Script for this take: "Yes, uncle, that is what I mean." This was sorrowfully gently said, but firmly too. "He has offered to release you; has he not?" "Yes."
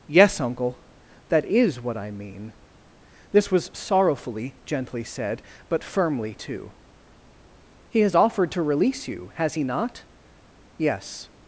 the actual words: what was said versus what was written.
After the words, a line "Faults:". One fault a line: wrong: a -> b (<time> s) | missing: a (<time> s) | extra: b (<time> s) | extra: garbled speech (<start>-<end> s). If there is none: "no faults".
"Yes, uncle, that is what I mean." This was sorrowfully gently said, but firmly too. "He has offered to release you; has he not?" "Yes."
Faults:
no faults